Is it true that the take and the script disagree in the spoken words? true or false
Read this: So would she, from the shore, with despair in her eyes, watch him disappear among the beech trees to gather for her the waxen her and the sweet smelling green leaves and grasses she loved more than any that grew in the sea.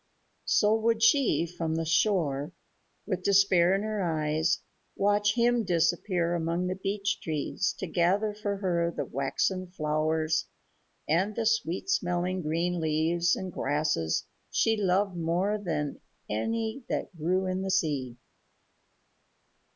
true